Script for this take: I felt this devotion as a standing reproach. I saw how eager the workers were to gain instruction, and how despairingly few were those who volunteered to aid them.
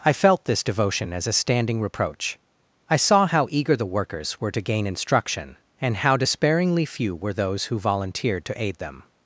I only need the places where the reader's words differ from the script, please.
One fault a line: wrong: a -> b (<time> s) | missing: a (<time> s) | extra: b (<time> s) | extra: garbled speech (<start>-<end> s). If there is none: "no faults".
no faults